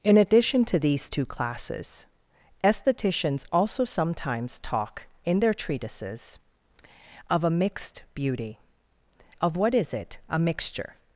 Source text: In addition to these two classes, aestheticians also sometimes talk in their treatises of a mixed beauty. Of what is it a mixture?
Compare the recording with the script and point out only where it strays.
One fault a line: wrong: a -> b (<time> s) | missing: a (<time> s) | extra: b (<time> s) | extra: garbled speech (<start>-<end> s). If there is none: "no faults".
no faults